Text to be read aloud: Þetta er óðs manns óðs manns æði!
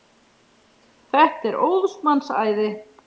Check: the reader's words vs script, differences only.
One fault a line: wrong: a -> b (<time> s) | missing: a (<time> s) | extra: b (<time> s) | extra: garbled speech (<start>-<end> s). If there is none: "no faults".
missing: óðs manns (2.3 s)